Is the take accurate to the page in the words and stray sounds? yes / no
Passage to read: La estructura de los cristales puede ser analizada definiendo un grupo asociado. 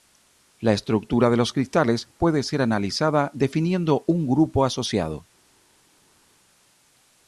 yes